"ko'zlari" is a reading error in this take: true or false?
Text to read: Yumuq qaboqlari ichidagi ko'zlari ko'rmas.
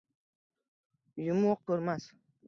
true